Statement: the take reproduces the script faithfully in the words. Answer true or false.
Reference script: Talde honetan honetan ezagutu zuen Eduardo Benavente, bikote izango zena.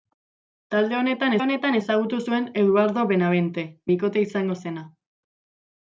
true